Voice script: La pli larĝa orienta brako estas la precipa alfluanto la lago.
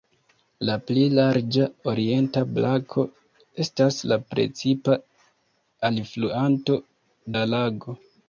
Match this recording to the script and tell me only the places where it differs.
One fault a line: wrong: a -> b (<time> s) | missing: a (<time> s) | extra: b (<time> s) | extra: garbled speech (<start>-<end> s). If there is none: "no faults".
no faults